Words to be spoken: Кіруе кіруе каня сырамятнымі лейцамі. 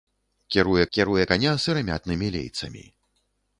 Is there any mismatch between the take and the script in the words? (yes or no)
no